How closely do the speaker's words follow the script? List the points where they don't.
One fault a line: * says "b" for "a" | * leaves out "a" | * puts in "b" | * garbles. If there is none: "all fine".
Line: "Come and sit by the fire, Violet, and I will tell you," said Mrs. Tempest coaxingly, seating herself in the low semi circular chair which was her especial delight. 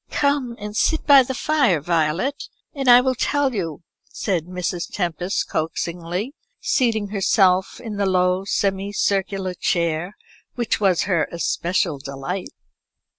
all fine